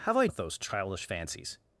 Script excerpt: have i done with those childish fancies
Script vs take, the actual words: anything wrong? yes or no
yes